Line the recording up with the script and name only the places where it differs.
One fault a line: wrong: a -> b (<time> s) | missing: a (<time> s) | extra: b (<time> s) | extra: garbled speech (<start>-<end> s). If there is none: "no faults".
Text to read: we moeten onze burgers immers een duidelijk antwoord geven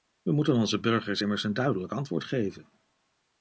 no faults